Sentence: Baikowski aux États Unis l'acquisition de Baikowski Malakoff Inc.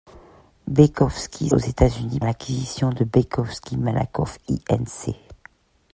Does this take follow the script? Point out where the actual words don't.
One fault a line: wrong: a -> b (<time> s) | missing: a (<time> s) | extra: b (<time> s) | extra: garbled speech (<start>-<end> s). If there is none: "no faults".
no faults